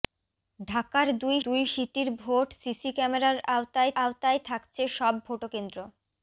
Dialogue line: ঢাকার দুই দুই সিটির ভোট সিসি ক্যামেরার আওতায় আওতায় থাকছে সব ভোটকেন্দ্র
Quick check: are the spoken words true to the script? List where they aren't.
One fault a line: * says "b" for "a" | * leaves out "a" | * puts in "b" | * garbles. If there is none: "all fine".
all fine